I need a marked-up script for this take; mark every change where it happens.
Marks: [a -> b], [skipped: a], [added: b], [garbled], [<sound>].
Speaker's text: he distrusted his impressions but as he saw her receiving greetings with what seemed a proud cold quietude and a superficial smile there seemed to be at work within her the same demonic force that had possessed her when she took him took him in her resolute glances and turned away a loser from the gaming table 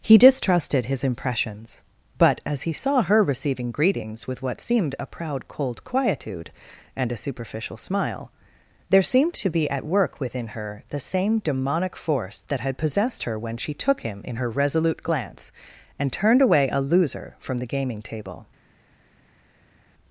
he distrusted his impressions but as he saw her receiving greetings with what seemed a proud cold quietude and a superficial smile there seemed to be at work within her the same demonic force that had possessed her when she took him [skipped: took him] in her resolute [glances -> glance] and turned away a loser from the gaming table